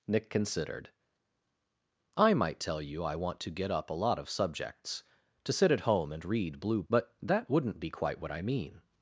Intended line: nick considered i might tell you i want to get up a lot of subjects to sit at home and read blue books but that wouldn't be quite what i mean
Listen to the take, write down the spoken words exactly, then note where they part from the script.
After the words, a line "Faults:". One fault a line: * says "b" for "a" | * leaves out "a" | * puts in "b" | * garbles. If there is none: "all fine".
nick considered i might tell you i want to get up a lot of subjects to sit at home and read blue but that wouldn't be quite what i mean
Faults:
* leaves out "books"